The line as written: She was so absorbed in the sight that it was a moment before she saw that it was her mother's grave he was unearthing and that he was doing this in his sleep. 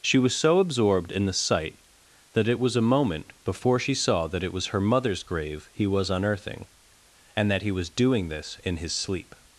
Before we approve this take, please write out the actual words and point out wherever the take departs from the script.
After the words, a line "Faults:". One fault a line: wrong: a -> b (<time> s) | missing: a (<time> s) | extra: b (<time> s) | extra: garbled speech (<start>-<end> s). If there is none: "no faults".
She was so absorbed in the sight that it was a moment before she saw that it was her mother's grave he was unearthing and that he was doing this in his sleep.
Faults:
no faults